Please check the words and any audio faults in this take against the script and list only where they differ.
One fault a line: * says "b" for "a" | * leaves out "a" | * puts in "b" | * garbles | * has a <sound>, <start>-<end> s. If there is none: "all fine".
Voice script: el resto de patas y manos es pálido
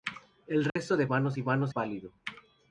* has a dropout, 0.7-0.8 s
* says "manos" for "patas"
* leaves out "es"